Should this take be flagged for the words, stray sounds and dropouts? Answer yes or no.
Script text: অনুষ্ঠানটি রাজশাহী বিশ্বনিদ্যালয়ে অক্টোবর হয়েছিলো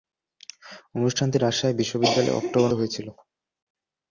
no